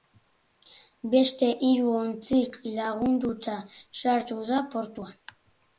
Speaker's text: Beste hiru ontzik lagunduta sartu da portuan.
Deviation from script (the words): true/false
false